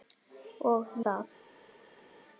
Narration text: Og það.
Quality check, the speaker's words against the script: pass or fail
pass